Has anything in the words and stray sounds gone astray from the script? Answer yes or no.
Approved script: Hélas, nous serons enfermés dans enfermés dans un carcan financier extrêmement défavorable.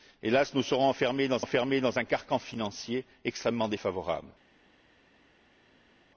no